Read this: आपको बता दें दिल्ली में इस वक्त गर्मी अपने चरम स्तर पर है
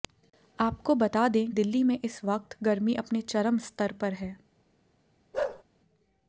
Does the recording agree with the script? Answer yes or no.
yes